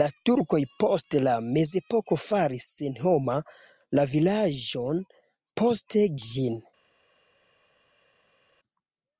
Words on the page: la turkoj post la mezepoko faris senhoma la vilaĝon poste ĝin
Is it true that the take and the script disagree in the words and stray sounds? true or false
false